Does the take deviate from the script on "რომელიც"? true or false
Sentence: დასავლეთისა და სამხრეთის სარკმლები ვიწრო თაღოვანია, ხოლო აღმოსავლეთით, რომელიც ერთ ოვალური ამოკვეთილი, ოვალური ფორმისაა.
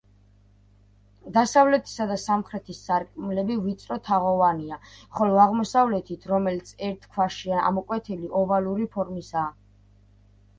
false